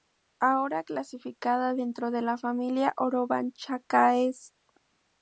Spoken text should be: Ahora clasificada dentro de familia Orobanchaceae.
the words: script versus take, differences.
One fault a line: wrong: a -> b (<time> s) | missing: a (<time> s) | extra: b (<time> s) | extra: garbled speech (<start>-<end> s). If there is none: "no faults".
extra: la (2.2 s)